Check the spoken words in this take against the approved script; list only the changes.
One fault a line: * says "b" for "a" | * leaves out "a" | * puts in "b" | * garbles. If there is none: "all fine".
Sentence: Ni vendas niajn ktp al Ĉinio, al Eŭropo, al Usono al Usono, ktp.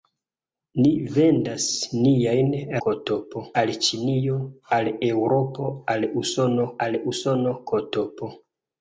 all fine